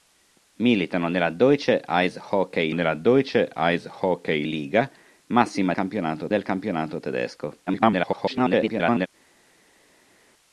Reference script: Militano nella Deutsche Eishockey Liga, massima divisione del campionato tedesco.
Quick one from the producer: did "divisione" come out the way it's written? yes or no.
no